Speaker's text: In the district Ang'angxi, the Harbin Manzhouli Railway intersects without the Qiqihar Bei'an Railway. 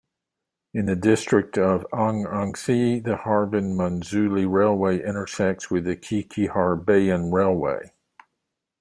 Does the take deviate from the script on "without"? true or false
true